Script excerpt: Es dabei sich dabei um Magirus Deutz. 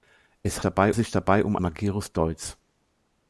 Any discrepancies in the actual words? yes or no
no